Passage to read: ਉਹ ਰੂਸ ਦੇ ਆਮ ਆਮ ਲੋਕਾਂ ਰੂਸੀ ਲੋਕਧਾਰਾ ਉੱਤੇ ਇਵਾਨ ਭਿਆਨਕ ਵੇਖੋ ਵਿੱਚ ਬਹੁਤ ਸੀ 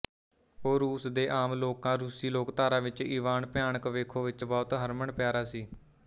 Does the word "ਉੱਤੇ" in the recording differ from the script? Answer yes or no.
yes